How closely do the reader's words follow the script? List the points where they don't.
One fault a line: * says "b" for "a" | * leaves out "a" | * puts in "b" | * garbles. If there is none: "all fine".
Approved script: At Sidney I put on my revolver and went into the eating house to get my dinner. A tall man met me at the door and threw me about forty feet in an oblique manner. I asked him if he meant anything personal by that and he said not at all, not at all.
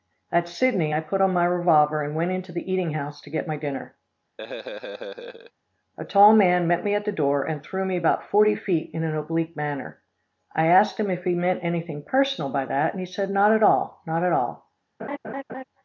all fine